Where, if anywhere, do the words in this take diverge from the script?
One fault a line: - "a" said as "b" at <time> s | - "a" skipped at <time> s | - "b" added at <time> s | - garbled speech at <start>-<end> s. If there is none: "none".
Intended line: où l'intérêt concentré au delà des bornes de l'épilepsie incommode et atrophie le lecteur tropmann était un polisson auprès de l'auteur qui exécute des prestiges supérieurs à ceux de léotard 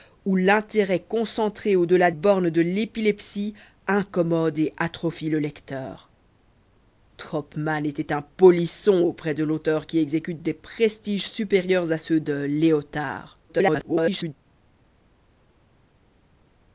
- "des" skipped at 2.1 s
- garbled speech at 13.5-14.3 s